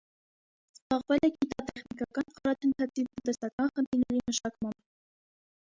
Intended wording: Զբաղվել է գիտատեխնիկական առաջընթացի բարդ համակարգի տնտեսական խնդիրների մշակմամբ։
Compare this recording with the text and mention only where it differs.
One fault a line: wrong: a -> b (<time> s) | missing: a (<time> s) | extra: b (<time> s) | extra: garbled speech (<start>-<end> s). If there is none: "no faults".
missing: բարդ համակարգի (3.0 s)